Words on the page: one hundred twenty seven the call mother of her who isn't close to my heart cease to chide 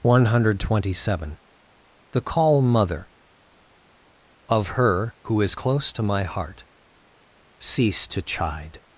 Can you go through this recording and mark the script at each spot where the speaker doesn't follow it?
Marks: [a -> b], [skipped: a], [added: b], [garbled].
one hundred twenty seven the call mother of her who [isn't -> is] close to my heart cease to chide